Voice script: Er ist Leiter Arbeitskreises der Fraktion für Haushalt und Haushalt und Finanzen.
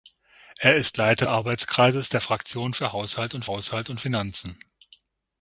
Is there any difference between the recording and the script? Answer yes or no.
no